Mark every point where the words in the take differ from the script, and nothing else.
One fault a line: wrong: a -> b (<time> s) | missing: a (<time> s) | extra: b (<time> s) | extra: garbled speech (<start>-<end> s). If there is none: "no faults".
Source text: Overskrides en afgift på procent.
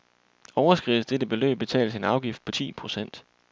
extra: dette beløb betales (1.1 s)
extra: ti (2.5 s)